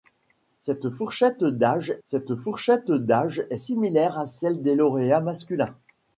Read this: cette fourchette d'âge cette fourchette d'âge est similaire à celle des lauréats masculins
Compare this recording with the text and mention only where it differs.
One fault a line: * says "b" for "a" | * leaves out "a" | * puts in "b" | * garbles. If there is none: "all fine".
all fine